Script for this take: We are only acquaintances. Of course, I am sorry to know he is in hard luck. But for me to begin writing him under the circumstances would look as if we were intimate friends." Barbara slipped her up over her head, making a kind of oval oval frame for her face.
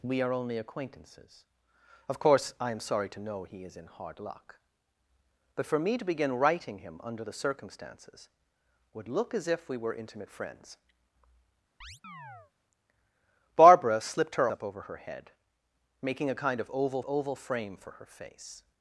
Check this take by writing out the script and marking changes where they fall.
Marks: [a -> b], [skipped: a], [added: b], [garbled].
We are only acquaintances. Of course, I am sorry to know he is in hard luck. But for me to begin writing him under the circumstances would look as if we were intimate friends." Barbara slipped her up over her head, making a kind of oval oval frame for her face.